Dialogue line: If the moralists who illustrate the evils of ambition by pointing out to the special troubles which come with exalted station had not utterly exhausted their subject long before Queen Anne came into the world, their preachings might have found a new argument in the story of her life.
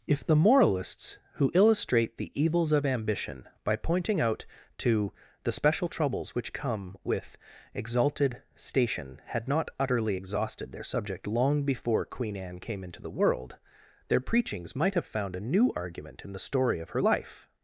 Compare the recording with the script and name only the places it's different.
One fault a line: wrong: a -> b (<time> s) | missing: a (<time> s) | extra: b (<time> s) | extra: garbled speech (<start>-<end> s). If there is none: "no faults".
no faults